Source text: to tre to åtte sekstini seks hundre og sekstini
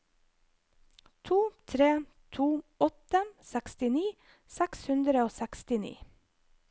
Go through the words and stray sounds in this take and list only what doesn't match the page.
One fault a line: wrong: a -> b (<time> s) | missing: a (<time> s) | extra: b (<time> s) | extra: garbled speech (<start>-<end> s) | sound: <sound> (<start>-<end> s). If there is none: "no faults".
no faults